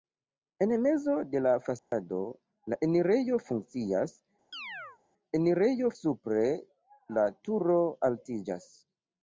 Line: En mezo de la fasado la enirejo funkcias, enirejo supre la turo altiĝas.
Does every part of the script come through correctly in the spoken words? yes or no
yes